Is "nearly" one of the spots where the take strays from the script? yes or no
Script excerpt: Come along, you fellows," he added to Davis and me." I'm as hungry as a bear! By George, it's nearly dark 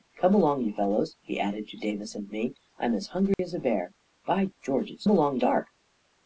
yes